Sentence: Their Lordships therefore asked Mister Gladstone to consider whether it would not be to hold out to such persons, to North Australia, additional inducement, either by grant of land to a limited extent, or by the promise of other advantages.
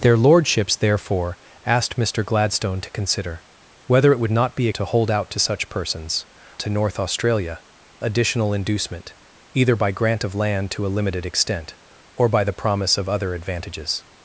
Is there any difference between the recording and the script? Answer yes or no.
no